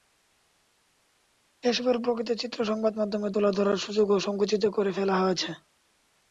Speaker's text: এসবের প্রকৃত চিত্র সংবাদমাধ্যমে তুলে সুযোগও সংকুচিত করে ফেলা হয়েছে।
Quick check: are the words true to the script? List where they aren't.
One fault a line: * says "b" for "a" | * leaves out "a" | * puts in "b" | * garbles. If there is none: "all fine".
* puts in "ধরার"